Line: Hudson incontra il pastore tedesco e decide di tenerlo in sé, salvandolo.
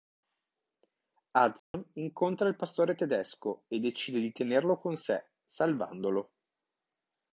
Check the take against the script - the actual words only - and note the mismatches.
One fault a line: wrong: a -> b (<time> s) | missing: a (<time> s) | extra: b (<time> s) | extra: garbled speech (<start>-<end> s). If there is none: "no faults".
wrong: in -> con (4.8 s)